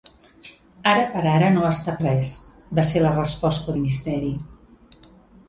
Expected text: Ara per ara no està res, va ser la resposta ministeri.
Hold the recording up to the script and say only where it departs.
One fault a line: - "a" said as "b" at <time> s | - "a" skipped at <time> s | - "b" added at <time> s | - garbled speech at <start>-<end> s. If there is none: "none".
none